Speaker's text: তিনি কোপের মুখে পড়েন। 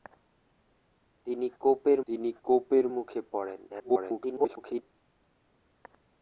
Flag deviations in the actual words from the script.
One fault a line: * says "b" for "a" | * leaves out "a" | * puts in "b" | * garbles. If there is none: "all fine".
* puts in "তিনি কোপের"
* garbles